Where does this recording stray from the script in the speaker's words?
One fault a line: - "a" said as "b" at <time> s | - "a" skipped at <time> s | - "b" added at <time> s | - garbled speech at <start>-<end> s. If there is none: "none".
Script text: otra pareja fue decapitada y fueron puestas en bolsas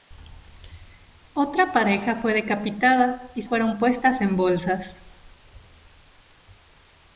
none